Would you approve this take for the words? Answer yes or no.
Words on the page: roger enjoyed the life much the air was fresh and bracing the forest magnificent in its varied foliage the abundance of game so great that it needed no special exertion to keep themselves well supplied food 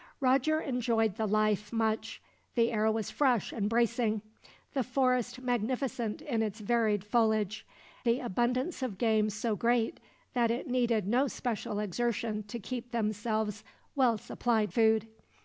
yes